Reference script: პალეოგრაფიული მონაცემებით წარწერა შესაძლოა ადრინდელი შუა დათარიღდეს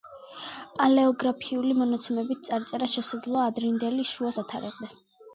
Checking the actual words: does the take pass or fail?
pass